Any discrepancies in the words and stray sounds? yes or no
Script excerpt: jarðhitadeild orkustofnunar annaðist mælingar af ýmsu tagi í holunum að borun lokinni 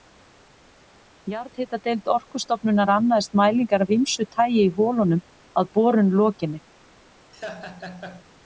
yes